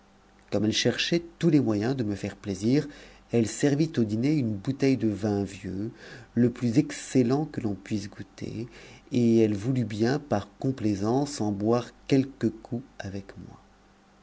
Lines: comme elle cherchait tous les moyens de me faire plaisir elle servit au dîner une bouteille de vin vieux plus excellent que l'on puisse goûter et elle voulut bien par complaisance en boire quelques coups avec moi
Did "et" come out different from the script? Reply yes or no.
no